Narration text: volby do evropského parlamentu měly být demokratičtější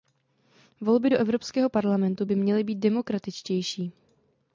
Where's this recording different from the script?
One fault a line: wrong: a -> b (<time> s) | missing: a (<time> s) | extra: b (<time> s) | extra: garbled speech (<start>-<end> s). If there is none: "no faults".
extra: by (2.2 s)